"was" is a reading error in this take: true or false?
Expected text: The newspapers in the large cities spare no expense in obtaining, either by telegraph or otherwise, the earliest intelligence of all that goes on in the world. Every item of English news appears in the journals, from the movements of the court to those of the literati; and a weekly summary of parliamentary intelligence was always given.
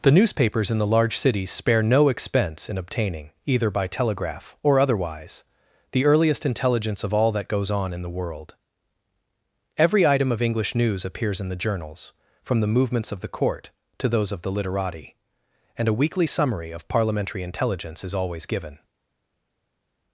true